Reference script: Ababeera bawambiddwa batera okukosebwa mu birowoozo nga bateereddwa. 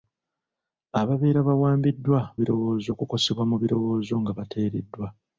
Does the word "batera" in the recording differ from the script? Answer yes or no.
yes